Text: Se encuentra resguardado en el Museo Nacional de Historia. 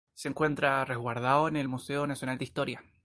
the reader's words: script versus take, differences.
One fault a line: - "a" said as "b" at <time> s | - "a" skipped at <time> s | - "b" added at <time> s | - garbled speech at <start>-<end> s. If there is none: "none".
none